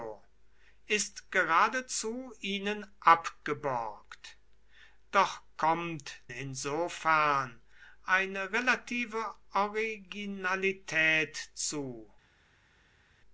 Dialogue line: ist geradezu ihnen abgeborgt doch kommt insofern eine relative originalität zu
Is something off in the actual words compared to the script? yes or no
no